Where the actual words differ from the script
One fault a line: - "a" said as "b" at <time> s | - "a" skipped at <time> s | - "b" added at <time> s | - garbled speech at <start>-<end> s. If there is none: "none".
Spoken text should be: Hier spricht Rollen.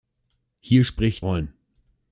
none